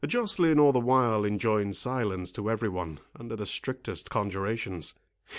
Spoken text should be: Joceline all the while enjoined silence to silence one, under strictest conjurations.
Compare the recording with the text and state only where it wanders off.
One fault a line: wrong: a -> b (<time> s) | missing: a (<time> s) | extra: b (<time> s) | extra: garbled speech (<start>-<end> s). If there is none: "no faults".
wrong: silence -> every (2.5 s)
extra: the (3.3 s)